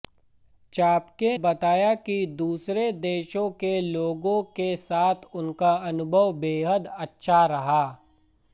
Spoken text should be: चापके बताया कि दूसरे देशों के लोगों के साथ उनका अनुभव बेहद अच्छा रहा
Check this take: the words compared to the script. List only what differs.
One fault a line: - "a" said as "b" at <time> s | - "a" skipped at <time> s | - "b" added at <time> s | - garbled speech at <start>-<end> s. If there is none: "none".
none